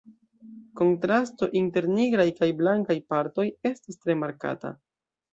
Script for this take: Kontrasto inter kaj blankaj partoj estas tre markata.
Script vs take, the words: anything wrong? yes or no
yes